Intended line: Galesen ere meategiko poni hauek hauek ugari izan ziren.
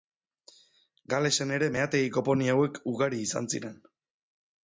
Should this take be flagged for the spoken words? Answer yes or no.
yes